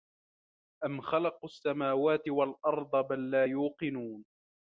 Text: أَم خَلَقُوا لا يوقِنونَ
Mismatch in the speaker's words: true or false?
true